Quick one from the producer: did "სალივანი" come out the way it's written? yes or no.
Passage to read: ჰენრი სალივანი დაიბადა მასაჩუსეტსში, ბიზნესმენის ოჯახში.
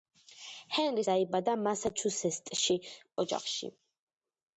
no